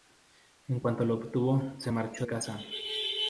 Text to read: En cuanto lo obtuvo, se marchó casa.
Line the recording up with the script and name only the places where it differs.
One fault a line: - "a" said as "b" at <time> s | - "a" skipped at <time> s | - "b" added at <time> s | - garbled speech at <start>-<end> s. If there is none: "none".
none